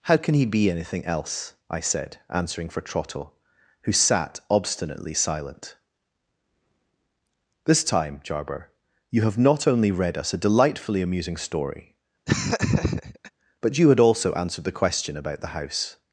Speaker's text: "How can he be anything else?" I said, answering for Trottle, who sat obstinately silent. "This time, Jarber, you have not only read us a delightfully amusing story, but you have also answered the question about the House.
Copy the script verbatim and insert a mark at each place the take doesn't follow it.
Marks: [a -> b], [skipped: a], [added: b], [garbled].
"How can he be anything else?" I said, answering for Trottle, who sat obstinately silent. "This time, Jarber, you have not only read us a delightfully amusing story, but you [have -> had] also answered the question about the House.